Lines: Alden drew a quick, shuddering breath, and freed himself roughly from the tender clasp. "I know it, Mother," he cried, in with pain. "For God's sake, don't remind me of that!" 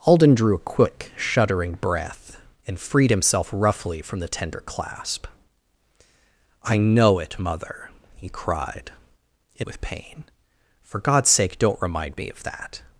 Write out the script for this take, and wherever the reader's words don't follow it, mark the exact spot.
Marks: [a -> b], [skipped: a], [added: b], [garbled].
Alden drew a quick, shuddering breath, and freed himself roughly from the tender clasp. "I know it, Mother," he cried, in with pain. "For God's sake, don't remind me of that!"